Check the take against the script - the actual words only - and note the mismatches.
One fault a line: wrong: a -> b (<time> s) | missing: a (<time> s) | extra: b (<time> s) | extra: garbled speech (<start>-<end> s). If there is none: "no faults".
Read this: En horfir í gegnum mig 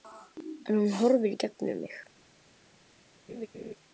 extra: hún (0.8 s)